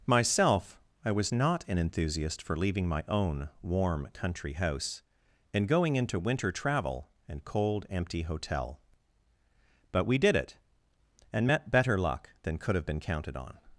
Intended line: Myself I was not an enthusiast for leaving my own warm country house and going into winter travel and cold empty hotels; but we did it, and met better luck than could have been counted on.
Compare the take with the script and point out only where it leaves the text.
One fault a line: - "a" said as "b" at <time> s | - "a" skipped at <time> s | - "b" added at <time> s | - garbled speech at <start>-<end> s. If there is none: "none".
- "hotels" said as "hotel" at 8.2 s